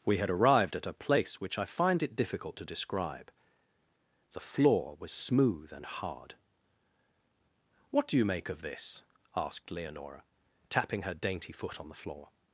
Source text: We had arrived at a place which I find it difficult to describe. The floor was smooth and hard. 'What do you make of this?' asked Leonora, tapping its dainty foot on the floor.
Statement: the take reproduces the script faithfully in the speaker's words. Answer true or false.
false